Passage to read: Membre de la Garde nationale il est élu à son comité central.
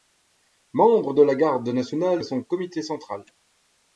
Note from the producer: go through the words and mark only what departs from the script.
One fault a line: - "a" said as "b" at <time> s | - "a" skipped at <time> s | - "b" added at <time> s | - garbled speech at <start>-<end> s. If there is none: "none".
- "il est élu" skipped at 2.2 s